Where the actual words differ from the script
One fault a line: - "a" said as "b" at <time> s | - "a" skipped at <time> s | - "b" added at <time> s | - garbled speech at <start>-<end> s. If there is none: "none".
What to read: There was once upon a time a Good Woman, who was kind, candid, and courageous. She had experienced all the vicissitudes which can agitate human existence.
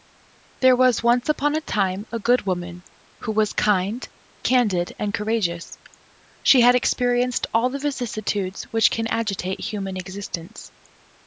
none